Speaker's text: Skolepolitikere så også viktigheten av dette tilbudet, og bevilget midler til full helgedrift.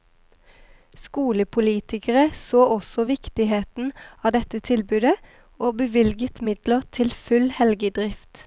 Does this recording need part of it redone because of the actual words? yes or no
no